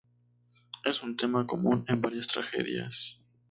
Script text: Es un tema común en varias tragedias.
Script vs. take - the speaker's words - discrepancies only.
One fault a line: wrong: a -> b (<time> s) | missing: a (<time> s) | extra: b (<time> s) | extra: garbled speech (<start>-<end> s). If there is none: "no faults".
no faults